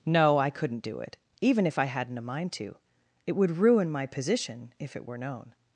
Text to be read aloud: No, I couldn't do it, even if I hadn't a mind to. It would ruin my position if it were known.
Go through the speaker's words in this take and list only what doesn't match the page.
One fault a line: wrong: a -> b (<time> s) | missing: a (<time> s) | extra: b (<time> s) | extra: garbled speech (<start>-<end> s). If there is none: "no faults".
no faults